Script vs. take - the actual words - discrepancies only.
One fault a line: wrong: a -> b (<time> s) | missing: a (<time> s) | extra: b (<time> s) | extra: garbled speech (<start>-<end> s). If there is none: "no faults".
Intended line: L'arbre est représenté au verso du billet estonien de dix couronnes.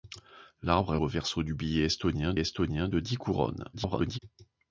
missing: représenté (1.0 s)
extra: estonien (2.4 s)
extra: garbled speech (3.7-4.2 s)